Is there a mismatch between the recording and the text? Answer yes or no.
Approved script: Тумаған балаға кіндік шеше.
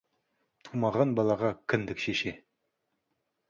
no